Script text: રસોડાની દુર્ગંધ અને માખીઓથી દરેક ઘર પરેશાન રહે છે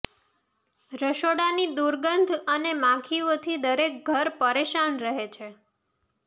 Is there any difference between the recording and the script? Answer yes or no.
no